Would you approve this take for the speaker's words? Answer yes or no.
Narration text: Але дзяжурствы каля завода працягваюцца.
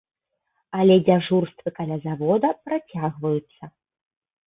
yes